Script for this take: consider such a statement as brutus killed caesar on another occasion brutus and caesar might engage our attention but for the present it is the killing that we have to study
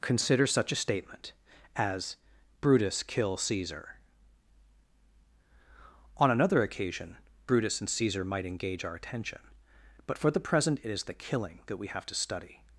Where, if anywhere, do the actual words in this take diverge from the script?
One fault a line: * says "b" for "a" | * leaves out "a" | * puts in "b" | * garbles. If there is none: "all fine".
* says "kill" for "killed"